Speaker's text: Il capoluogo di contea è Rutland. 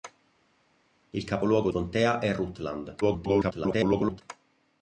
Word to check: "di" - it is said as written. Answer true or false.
false